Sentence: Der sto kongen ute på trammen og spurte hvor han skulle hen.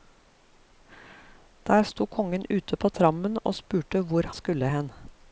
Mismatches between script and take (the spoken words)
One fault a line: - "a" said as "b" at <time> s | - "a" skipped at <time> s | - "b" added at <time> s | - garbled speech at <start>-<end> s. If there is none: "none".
- "han" skipped at 4.3 s